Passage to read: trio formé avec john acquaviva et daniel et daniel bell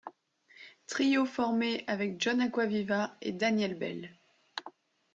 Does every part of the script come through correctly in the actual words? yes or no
no